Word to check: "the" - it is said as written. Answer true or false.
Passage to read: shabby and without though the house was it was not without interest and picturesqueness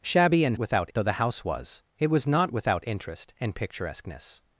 true